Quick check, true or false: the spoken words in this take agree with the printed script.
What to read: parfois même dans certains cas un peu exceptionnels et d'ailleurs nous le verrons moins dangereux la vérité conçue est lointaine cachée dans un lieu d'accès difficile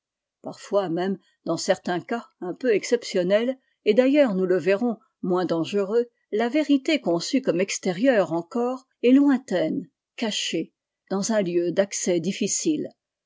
false